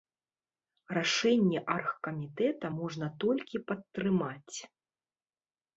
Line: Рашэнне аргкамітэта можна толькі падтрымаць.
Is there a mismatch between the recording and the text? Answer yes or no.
no